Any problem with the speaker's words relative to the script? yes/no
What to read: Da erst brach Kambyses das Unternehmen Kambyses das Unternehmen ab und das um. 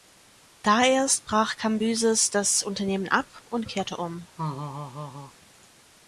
yes